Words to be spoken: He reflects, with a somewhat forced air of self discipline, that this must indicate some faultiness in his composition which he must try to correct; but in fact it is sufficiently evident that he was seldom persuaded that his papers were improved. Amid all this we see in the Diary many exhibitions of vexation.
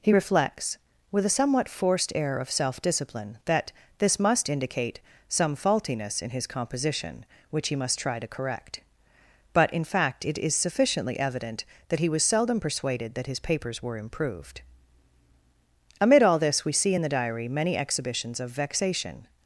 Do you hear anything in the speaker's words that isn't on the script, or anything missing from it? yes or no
no